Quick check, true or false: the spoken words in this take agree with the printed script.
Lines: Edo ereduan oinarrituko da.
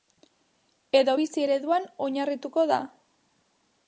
false